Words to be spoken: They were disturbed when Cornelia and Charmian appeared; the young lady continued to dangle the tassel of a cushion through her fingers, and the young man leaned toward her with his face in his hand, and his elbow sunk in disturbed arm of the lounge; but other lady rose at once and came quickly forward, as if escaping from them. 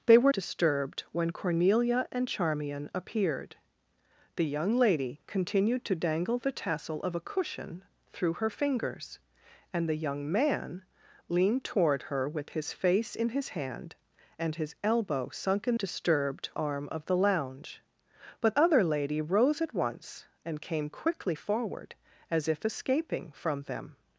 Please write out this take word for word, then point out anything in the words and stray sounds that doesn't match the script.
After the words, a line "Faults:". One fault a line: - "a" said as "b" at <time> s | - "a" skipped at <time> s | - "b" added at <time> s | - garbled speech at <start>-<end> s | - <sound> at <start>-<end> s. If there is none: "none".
They were disturbed when Cornelia and Charmian appeared; the young lady continued to dangle the tassel of a cushion through her fingers, and the young man leaned toward her with his face in his hand, and his elbow sunk in disturbed arm of the lounge; but other lady rose at once and came quickly forward, as if escaping from them.
Faults:
none